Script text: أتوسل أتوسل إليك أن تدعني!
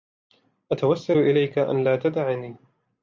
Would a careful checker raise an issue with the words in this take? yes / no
yes